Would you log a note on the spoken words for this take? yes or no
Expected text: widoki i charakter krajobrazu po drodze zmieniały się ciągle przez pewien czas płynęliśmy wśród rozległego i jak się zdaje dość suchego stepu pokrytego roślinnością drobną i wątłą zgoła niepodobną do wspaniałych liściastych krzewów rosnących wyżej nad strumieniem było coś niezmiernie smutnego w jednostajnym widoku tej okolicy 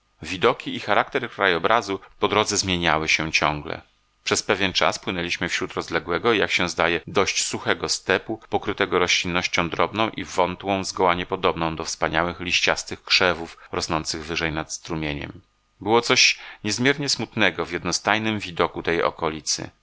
no